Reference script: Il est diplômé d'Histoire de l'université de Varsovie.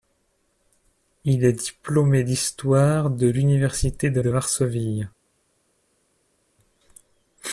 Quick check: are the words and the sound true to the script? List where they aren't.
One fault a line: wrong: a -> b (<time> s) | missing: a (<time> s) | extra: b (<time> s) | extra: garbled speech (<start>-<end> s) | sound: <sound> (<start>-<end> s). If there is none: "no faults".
extra: de (4.2 s)